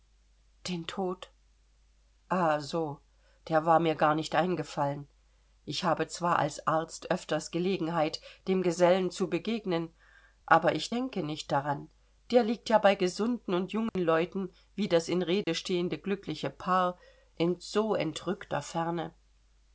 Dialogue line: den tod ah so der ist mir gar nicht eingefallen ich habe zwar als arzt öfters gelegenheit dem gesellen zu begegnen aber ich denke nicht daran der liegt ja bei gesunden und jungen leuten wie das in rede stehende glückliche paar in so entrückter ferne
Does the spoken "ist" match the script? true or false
false